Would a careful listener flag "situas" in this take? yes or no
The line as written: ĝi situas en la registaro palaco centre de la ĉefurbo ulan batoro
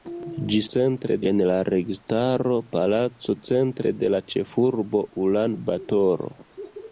yes